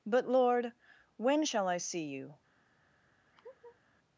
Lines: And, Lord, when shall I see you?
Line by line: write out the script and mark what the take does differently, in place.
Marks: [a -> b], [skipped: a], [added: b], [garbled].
[And, -> But] Lord, when shall I see you?